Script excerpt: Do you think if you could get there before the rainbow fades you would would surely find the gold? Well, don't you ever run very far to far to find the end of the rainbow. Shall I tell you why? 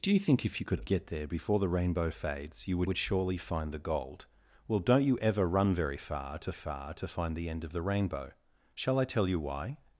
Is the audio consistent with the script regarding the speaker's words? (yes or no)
yes